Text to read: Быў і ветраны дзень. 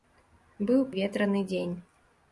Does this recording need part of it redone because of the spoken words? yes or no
no